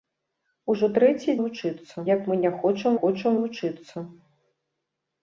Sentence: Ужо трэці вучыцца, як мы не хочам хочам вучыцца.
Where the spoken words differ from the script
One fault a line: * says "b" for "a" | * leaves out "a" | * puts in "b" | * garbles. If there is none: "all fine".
all fine